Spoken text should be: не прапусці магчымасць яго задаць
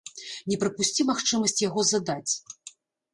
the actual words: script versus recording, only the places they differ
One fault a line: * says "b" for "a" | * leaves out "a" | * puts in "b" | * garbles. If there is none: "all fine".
all fine